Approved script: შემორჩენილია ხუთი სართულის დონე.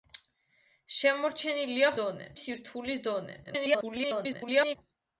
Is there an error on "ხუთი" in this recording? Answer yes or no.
yes